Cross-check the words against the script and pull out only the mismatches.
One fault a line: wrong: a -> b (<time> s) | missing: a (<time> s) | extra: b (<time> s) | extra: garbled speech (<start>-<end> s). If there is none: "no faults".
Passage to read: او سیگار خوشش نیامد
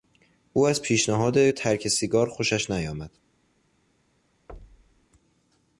extra: از پیشنهاد ترک (0.7 s)